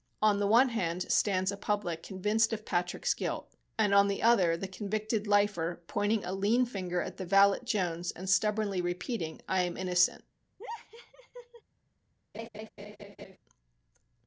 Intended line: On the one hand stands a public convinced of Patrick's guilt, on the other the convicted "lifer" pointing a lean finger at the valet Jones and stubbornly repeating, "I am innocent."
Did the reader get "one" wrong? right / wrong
right